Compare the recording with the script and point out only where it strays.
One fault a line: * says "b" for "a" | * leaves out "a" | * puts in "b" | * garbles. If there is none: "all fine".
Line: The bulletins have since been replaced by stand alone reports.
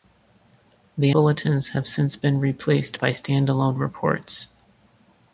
all fine